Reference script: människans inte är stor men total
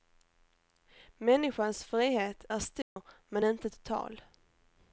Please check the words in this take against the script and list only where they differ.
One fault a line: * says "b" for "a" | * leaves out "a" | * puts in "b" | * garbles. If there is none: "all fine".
* says "frihet" for "inte"
* puts in "inte"